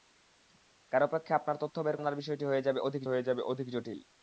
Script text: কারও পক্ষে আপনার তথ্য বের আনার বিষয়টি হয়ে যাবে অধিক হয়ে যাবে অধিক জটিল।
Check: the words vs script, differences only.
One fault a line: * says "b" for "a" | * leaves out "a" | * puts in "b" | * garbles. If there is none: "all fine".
all fine